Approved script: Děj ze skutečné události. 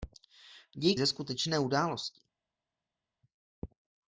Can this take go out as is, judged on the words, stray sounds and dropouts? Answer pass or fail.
pass